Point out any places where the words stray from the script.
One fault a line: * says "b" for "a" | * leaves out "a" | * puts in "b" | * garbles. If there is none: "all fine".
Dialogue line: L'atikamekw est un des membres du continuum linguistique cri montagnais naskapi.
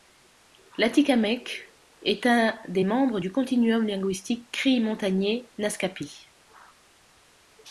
all fine